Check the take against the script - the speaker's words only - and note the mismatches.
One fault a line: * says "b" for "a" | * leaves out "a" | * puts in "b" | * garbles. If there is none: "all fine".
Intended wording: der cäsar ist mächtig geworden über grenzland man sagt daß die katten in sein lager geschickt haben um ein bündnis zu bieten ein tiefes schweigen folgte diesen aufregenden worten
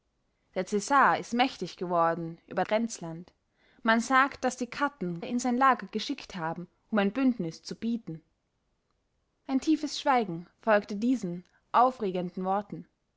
all fine